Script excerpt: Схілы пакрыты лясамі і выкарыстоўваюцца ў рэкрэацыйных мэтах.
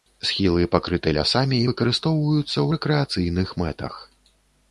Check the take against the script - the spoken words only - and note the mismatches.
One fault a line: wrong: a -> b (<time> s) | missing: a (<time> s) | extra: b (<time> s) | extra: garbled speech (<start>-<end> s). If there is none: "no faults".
no faults